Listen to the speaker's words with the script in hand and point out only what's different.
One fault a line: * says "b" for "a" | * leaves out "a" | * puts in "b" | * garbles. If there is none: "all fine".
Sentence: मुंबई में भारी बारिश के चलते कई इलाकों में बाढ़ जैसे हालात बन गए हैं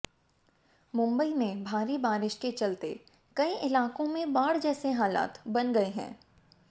all fine